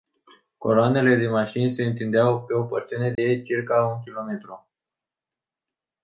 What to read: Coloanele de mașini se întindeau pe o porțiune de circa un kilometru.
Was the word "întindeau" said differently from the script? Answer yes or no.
no